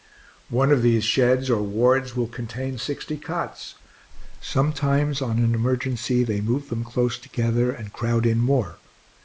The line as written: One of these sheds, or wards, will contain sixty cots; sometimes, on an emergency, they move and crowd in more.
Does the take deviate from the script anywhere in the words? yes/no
yes